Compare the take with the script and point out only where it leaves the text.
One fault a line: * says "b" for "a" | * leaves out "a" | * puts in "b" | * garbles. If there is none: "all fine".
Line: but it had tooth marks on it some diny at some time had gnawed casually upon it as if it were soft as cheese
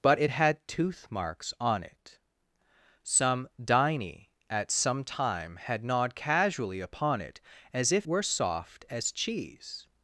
* leaves out "it"